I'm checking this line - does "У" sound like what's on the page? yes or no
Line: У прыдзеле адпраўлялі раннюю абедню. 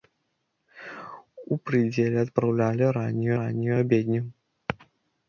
yes